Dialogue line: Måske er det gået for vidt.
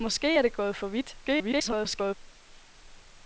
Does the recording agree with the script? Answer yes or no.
no